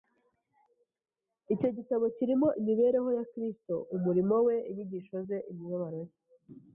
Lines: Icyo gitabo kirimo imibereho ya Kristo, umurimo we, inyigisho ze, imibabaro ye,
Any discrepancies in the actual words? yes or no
no